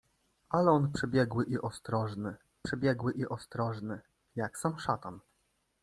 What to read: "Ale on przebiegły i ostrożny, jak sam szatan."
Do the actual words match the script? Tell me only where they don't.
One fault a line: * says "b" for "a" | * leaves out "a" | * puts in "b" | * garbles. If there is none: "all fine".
* puts in "przebiegły i ostrożny"